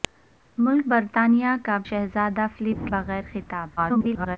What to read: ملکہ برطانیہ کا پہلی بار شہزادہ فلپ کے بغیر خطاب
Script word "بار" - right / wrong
wrong